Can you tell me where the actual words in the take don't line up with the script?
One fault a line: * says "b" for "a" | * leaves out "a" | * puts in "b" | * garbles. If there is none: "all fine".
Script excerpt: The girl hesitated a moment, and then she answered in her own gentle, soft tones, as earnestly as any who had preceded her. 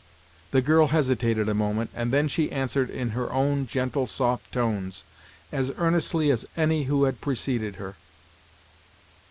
all fine